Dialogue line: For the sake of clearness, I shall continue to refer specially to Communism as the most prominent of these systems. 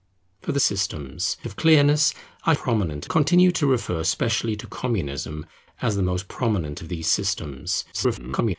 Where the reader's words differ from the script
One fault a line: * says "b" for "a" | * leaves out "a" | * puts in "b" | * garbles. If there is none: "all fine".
* says "systems" for "sake"
* says "prominent" for "shall"
* garbles